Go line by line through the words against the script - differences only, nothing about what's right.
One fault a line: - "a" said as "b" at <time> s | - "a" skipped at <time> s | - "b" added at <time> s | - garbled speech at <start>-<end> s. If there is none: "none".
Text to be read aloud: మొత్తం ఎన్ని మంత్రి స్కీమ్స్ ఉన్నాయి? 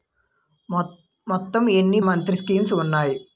none